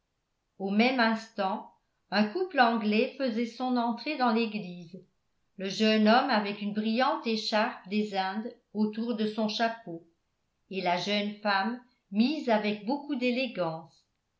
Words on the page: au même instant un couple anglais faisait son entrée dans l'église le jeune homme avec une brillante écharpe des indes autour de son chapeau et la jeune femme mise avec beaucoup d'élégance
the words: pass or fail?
pass